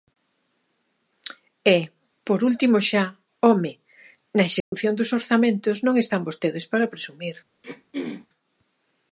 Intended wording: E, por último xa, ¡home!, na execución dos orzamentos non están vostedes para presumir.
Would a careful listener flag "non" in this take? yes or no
no